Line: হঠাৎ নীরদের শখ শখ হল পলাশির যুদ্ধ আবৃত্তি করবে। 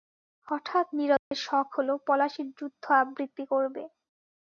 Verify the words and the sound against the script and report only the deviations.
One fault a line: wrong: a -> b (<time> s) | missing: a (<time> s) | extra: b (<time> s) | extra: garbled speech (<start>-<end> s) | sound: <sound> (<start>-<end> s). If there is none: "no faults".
sound: dropout (1.2-1.3 s)
missing: শখ (1.7 s)